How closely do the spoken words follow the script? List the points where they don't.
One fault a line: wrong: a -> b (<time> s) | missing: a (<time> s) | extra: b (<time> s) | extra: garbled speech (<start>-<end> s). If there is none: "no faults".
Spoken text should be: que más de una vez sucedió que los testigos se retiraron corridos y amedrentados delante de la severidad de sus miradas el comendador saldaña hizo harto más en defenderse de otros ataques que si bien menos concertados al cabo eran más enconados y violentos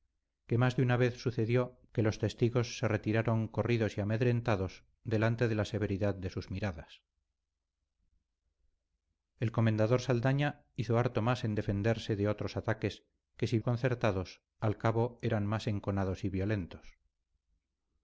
missing: bien menos (13.6 s)